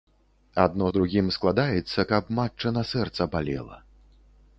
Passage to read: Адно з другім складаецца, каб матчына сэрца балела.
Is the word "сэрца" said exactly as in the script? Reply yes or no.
yes